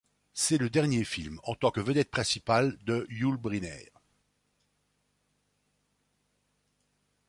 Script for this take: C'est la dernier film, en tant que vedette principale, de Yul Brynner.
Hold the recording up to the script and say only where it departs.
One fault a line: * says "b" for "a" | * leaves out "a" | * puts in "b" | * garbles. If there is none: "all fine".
* says "le" for "la"